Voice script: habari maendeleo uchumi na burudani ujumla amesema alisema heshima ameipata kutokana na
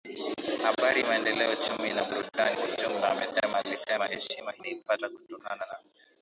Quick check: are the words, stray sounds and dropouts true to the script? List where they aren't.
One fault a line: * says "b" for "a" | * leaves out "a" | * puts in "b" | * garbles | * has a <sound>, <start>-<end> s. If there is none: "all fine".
all fine